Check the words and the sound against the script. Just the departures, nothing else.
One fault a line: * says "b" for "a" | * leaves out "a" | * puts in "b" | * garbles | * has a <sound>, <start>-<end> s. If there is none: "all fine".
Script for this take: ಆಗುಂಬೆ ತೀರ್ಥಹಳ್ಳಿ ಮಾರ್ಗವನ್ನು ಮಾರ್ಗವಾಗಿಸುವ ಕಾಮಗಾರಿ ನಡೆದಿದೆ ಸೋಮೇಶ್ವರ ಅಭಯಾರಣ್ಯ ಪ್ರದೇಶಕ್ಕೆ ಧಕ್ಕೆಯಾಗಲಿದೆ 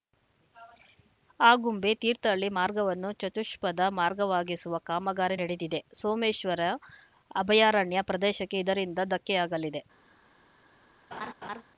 * puts in "ಚತುಷ್ಪಥ"
* puts in "ಇದರಿಂದ"
* has a laugh, 11.1-11.6 s